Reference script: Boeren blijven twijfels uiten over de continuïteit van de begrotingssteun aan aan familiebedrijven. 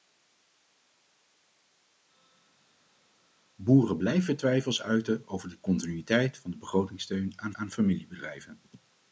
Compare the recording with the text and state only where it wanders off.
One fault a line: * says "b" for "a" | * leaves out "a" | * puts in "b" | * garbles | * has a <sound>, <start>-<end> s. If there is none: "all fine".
all fine